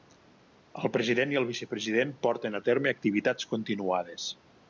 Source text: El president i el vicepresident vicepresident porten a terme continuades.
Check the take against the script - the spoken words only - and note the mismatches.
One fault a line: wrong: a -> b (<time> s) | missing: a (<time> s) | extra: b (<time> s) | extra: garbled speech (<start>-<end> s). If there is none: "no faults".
missing: vicepresident (2.1 s)
extra: activitats (3.0 s)